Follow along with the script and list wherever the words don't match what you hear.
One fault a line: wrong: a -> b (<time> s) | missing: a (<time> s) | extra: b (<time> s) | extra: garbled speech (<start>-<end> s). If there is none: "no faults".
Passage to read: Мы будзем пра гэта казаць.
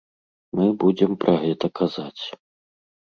no faults